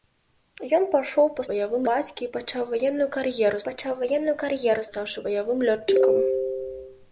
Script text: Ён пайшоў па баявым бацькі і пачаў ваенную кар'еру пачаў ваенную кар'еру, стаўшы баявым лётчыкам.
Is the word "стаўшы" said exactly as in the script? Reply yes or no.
yes